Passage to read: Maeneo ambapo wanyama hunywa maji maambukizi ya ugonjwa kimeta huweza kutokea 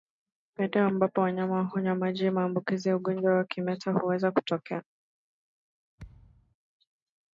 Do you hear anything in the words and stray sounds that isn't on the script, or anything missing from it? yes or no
yes